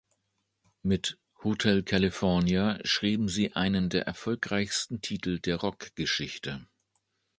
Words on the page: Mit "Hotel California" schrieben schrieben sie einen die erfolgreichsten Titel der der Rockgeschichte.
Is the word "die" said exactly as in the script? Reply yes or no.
no